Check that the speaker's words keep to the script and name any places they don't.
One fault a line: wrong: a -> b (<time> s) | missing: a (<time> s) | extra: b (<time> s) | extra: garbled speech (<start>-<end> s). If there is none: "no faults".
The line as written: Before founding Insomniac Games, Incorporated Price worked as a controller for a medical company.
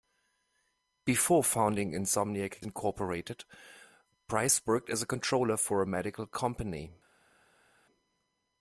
missing: Games (2.6 s)